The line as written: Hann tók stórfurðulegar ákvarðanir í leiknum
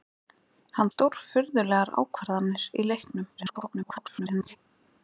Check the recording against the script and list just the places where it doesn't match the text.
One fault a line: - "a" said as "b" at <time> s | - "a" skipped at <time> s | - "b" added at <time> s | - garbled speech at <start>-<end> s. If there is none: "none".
- "tók" skipped at 0.9 s
- garbled speech at 3.4-4.6 s